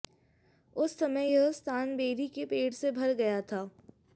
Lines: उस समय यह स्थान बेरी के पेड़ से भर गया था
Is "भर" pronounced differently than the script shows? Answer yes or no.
no